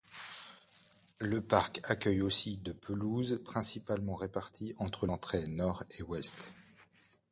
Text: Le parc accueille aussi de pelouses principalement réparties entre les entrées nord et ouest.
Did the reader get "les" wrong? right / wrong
wrong